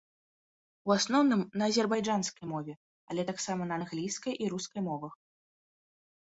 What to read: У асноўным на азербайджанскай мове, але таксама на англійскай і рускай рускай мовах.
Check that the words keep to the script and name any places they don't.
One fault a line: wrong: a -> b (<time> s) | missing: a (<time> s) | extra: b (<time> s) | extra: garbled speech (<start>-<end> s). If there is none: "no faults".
missing: рускай (4.8 s)